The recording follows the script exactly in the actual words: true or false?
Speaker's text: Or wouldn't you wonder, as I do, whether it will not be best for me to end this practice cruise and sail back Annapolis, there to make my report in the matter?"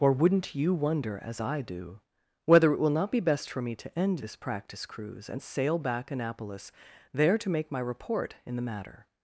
true